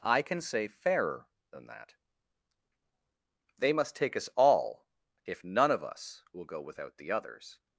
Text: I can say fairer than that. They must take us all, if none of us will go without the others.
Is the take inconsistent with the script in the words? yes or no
no